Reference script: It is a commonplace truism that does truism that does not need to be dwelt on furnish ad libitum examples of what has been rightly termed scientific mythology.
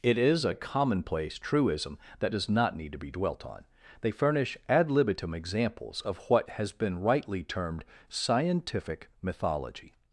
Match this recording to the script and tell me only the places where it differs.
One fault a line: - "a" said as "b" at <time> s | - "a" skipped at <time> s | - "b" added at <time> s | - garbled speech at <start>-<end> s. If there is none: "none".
- "truism that does" skipped at 2.5 s
- "they" added at 4.0 s